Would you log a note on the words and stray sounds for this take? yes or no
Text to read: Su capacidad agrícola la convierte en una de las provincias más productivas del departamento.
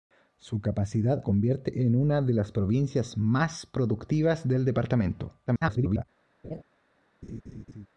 yes